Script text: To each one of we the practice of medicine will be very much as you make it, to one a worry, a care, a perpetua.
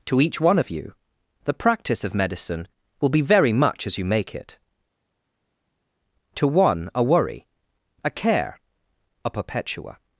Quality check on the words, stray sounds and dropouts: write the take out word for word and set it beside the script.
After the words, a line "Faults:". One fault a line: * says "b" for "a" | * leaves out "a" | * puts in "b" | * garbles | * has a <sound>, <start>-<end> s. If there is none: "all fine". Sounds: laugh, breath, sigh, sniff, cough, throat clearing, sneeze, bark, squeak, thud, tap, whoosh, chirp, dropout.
To each one of you the practice of medicine will be very much as you make it, to one a worry, a care, a perpetua.
Faults:
* says "you" for "we"